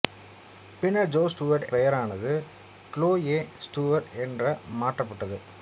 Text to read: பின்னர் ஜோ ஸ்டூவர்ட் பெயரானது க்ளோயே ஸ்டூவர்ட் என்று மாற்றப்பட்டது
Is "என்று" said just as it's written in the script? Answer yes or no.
yes